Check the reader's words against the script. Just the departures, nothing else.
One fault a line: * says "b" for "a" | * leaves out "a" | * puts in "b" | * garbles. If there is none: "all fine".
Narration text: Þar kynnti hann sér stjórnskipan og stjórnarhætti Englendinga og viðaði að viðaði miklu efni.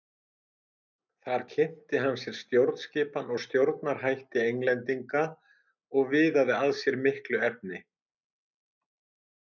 * says "sér" for "viðaði"